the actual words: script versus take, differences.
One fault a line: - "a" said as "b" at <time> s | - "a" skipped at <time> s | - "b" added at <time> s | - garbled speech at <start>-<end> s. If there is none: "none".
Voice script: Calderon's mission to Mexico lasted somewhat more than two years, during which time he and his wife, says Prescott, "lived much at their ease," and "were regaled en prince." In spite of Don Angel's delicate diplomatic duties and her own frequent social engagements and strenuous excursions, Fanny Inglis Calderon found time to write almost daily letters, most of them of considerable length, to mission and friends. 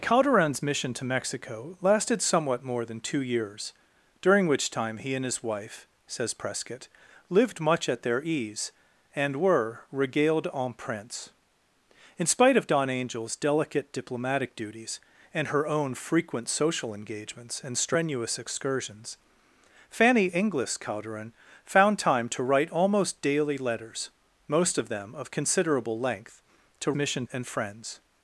none